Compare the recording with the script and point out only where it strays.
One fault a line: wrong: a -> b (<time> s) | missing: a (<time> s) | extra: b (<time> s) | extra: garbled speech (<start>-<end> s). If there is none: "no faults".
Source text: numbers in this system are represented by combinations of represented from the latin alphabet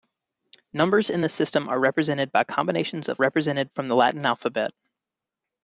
no faults